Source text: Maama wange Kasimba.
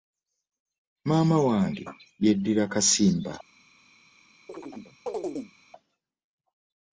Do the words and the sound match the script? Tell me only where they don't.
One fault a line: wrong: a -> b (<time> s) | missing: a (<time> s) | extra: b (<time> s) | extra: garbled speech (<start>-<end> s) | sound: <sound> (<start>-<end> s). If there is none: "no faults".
extra: yeddira (2.2 s)
sound: chirp (4.5-5.5 s)